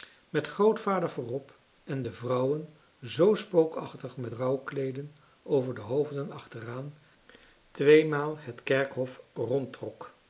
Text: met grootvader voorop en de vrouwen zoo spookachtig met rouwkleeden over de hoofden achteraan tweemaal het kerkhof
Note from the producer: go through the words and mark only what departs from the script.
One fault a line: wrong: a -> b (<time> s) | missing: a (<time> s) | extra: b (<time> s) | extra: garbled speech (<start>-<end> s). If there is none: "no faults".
no faults